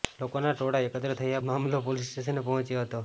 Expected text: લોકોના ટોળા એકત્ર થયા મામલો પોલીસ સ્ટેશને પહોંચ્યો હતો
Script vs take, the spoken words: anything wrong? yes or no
no